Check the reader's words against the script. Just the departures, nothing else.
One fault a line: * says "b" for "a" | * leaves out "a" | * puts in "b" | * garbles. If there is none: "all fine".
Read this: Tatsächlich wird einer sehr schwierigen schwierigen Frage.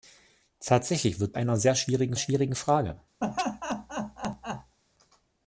all fine